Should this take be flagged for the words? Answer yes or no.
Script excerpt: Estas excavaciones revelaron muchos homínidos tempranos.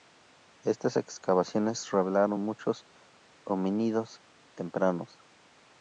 no